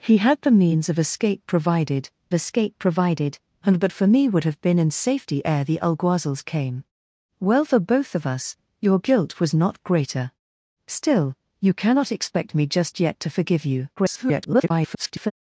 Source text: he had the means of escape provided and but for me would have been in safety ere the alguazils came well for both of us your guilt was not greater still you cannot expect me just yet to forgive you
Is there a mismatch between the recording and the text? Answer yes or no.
yes